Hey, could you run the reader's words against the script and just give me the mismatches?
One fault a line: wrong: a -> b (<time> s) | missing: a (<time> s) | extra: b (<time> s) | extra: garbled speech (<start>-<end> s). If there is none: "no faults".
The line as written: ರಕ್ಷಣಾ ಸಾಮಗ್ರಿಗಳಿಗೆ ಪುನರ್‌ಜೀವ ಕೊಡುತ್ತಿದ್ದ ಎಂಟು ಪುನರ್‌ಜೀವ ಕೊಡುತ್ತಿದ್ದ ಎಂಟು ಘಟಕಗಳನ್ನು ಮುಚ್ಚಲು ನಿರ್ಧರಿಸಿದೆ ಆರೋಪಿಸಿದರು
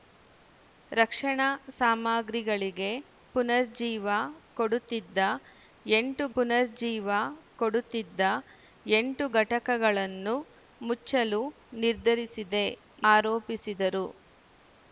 no faults